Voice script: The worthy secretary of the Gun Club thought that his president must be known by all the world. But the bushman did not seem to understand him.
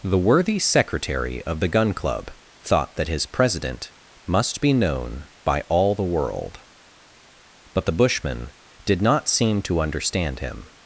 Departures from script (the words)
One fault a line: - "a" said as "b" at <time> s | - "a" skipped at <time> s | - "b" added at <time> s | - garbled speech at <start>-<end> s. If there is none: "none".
none